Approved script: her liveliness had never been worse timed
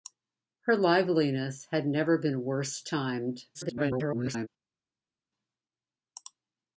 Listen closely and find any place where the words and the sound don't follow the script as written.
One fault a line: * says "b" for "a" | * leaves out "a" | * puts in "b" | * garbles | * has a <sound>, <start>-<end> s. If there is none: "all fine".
* garbles